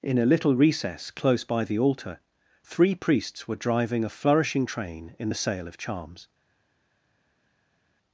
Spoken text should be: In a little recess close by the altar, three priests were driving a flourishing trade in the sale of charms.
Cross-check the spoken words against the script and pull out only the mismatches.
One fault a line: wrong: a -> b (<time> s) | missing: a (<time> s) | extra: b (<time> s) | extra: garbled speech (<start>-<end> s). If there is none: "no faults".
wrong: trade -> train (4.6 s)